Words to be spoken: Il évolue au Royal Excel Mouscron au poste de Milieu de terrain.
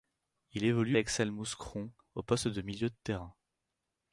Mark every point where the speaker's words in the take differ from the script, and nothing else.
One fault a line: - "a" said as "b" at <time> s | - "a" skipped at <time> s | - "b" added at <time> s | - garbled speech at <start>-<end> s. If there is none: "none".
- "au Royal" skipped at 1.0 s